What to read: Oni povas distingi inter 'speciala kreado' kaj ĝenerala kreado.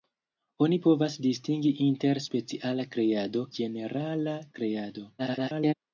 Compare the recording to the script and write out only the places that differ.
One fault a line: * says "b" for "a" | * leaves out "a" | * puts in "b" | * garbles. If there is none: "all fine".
* leaves out "kaj"
* garbles